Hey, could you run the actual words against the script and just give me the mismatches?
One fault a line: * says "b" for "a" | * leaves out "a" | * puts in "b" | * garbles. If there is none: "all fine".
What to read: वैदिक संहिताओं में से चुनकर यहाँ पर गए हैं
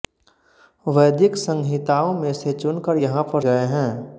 all fine